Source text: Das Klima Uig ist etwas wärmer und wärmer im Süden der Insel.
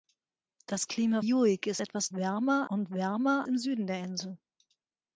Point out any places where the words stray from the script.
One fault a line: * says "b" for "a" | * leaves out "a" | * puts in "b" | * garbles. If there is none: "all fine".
all fine